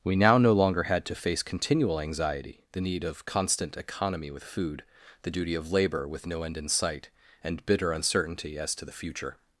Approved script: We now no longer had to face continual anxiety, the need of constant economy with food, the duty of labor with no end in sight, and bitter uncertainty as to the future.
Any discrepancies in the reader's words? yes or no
no